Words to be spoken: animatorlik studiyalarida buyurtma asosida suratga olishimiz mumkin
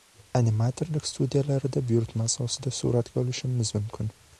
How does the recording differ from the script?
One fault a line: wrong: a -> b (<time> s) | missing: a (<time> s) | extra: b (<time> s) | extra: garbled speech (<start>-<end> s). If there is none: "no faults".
no faults